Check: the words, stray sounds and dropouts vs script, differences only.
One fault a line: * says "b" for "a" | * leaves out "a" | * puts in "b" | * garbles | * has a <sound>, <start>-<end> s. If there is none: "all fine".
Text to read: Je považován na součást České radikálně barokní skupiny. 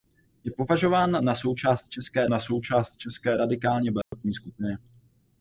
* puts in "na součást České"
* has a dropout, 4.0-4.1 s